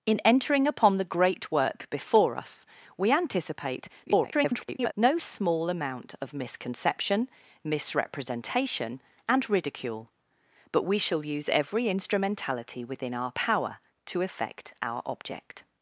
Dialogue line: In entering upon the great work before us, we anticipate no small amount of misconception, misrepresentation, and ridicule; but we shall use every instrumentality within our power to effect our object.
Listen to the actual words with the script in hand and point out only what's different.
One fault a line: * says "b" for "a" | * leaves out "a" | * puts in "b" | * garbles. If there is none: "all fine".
* garbles